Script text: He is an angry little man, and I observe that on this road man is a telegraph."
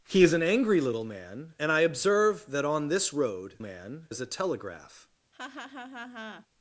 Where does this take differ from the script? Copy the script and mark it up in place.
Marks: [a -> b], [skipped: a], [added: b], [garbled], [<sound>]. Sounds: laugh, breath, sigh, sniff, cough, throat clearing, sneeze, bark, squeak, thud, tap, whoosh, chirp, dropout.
He is an angry little man, and I observe that on this road man is a telegraph." [laugh]